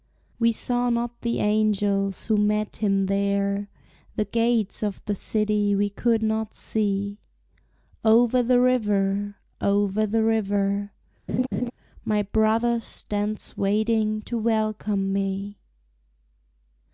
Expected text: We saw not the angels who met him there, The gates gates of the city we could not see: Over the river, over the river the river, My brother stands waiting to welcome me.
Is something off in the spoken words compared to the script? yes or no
yes